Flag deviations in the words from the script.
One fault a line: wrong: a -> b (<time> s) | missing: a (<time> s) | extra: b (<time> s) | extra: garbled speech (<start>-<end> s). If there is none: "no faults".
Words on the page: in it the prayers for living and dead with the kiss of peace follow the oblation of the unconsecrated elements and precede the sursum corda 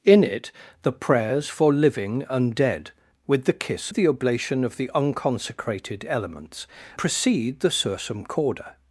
missing: of peace follow (3.9 s)
missing: and (6.7 s)